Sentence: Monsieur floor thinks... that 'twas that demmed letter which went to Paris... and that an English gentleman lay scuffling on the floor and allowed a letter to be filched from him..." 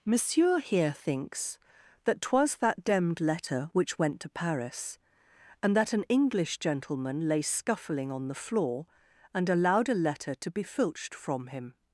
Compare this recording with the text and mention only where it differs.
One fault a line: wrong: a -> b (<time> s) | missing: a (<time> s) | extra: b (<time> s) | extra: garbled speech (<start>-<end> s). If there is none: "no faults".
wrong: floor -> here (0.6 s)